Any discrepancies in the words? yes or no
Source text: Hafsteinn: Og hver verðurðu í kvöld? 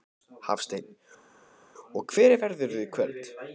no